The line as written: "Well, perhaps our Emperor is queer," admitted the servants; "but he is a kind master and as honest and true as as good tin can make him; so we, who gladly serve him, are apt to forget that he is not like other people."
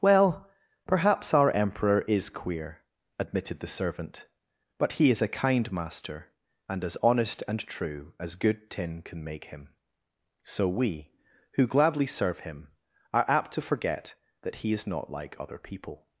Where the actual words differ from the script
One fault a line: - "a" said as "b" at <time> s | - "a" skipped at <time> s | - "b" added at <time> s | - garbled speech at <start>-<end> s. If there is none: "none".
- "servants" said as "servant" at 3.7 s
- "as" skipped at 8.3 s